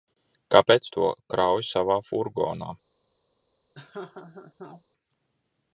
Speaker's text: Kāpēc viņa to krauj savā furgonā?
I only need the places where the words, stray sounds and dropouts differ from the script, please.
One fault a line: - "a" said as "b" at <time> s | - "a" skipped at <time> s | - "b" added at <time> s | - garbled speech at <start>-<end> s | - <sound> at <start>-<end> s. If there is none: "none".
- "viņa" skipped at 0.9 s
- laugh at 3.7-4.8 s